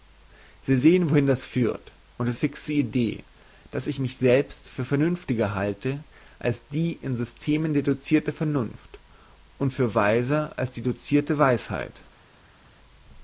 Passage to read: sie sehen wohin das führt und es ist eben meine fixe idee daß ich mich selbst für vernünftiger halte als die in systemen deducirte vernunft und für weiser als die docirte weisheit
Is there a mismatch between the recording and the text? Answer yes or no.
yes